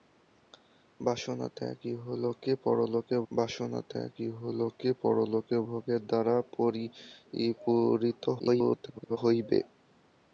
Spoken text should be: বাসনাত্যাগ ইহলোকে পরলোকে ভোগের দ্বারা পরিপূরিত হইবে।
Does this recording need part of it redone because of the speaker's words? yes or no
yes